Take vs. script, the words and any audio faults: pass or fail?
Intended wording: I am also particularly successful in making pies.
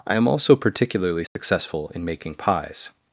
fail